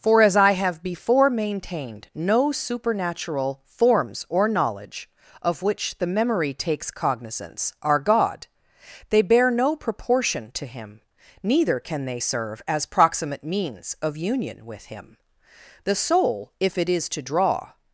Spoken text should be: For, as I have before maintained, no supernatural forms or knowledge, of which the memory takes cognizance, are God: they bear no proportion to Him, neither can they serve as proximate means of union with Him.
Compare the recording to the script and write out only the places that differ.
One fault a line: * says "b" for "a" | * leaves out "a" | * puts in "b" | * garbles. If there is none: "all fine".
* puts in "The soul if it is to draw"